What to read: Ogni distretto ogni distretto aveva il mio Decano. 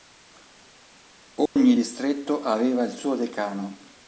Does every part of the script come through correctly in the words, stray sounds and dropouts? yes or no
no